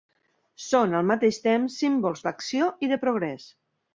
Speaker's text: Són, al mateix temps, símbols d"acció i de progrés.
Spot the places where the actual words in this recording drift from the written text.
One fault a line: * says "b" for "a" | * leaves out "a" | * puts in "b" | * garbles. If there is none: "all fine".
all fine